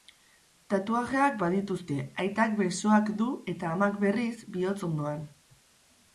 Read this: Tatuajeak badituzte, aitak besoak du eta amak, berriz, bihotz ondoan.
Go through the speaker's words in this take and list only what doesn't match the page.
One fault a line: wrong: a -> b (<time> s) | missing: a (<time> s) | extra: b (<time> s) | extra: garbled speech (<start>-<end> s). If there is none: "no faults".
no faults